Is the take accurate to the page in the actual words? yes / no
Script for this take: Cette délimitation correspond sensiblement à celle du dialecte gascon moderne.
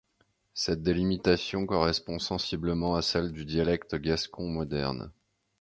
yes